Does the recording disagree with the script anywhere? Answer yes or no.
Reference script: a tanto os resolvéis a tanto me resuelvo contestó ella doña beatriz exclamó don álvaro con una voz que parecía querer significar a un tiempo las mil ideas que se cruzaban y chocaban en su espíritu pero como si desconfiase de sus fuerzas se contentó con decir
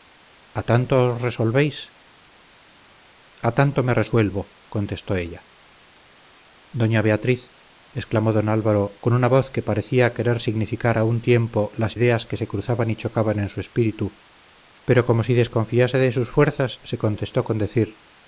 yes